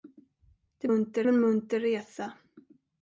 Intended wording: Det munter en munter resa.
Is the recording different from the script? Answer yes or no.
no